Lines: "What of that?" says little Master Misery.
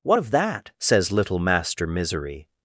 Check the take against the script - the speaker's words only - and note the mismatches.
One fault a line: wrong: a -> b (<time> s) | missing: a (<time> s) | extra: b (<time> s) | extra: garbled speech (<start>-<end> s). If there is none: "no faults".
no faults